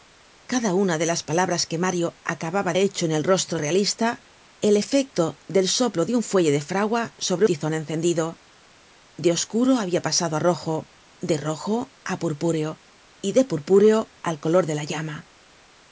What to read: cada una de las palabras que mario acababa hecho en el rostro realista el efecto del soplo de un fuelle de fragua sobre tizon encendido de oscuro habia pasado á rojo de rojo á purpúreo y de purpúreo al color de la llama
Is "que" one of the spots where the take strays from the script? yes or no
no